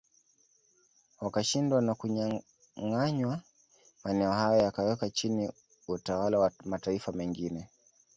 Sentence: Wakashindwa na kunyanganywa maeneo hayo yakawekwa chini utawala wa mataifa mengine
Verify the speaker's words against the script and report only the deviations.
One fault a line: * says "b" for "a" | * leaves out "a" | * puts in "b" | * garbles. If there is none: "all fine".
all fine